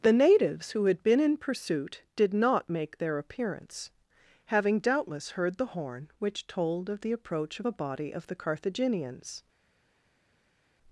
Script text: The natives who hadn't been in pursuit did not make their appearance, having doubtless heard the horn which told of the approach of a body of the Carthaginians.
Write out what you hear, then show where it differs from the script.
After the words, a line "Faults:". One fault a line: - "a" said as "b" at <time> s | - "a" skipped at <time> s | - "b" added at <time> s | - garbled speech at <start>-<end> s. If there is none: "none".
The natives who had been in pursuit did not make their appearance, having doubtless heard the horn which told of the approach of a body of the Carthaginians.
Faults:
- "hadn't" said as "had" at 0.8 s